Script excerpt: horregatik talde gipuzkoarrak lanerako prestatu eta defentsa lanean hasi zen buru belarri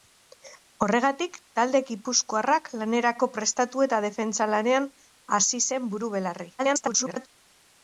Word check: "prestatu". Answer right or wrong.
right